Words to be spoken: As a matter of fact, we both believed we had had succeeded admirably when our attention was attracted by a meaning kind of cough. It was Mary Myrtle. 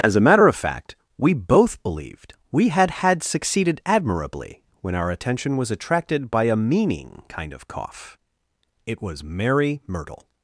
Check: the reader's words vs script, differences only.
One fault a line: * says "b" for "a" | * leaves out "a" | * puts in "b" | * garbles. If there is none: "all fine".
all fine